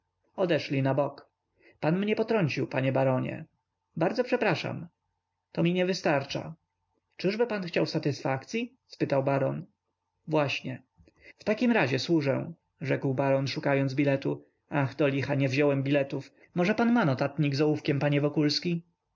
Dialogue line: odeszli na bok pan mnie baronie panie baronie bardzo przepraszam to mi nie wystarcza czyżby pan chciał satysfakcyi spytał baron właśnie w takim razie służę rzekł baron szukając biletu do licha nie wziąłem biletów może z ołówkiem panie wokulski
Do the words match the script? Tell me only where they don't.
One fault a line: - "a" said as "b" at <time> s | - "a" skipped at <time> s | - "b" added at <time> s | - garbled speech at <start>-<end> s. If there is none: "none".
- "baronie" said as "potrącił" at 2.1 s
- "ach" added at 14.7 s
- "pan ma notatnik" added at 16.8 s